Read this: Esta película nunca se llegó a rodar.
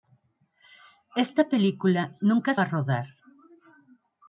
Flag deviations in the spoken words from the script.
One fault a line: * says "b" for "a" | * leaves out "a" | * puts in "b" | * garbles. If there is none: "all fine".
* leaves out "se llegó"